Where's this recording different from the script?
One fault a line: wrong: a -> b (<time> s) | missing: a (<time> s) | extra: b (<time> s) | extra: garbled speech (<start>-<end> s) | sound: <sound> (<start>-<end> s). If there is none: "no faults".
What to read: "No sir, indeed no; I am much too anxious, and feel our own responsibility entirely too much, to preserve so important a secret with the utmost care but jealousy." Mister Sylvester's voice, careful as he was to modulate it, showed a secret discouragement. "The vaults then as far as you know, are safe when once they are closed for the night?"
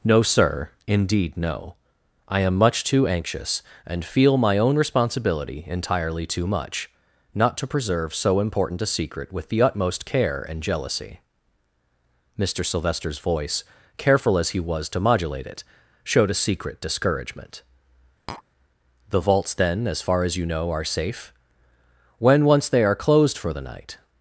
wrong: our -> my (4.3 s)
extra: not (7.3 s)
wrong: but -> and (10.4 s)
sound: tap (18.3-18.4 s)